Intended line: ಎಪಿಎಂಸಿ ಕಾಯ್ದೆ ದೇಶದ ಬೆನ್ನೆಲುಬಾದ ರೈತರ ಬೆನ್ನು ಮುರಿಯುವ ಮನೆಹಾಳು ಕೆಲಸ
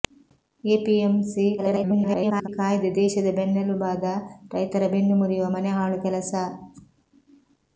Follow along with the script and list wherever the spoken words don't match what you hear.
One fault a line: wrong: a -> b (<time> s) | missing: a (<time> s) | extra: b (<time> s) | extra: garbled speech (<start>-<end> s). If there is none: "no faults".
extra: garbled speech (1.6-2.5 s)